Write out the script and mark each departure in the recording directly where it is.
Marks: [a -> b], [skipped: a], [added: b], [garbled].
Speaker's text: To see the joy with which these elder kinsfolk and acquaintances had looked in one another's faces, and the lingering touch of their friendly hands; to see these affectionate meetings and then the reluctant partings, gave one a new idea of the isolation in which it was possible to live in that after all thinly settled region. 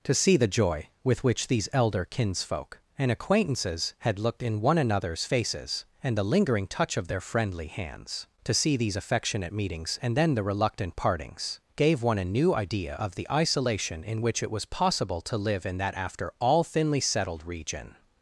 To see the joy with which these elder kinsfolk and acquaintances had looked in one another's faces, and the lingering touch of their friendly hands; to see these affectionate meetings and then the reluctant partings, gave one a new idea of the isolation in which it was possible to live in that after all thinly settled region.